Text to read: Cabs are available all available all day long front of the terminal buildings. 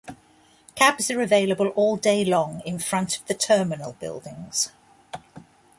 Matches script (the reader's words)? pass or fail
fail